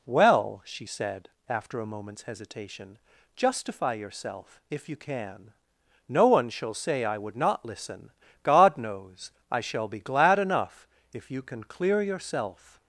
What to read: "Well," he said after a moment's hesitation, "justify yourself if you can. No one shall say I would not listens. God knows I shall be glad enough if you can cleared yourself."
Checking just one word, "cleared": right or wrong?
wrong